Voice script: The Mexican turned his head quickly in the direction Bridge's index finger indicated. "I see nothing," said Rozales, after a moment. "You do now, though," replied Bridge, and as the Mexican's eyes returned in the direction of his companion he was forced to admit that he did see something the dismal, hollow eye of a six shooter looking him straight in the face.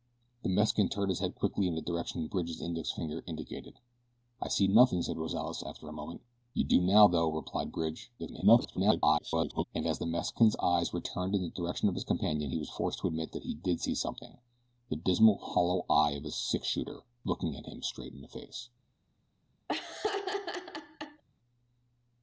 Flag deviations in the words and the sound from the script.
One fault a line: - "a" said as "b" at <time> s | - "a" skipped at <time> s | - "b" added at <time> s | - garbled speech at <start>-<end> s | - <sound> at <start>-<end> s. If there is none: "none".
- garbled speech at 8.2-9.6 s
- laugh at 19.7-21.2 s